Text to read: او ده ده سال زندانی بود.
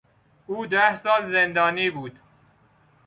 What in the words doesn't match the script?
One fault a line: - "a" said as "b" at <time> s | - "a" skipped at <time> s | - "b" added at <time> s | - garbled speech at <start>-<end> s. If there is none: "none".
- "ده" skipped at 0.9 s